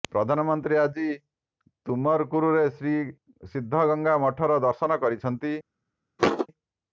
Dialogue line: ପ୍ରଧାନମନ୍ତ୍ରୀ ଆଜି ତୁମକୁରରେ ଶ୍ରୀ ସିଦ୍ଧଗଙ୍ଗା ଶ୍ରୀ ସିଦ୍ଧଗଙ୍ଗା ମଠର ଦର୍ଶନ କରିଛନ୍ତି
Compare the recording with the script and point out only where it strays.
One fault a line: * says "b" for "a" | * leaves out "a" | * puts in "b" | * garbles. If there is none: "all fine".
* leaves out "ଶ୍ରୀ ସିଦ୍ଧଗଙ୍ଗା"